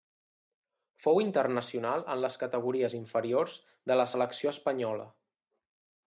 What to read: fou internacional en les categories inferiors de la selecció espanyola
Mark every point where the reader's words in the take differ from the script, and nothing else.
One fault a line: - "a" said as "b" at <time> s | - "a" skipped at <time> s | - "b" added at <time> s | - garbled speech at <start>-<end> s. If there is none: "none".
none